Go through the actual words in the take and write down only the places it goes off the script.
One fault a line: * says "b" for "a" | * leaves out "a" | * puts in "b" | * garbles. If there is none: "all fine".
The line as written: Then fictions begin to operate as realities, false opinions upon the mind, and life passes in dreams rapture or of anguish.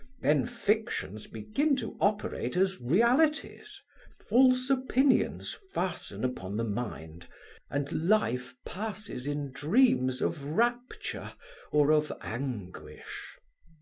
* puts in "fasten"
* puts in "of"